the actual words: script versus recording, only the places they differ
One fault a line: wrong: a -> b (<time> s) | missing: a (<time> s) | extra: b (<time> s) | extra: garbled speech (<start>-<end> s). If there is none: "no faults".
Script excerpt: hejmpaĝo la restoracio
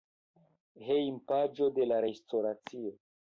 extra: de (1.8 s)